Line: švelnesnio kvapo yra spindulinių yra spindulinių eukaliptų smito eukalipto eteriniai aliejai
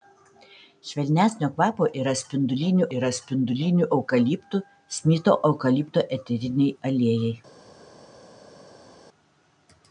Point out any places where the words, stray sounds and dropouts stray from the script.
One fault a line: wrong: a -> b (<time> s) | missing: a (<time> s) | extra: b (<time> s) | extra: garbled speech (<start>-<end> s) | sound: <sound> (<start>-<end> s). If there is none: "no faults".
no faults